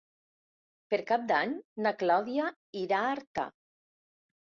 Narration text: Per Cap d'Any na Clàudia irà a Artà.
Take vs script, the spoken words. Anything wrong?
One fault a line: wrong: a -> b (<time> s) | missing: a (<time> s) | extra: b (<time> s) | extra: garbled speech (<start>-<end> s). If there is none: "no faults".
no faults